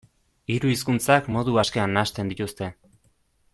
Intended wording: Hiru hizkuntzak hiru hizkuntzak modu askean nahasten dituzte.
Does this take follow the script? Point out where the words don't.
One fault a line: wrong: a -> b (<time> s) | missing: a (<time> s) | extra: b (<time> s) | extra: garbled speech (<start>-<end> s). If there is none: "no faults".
missing: hiru hizkuntzak (1.3 s)